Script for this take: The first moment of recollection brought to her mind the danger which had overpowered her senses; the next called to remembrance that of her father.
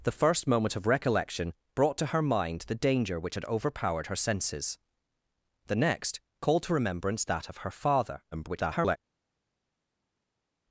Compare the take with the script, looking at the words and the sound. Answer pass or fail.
fail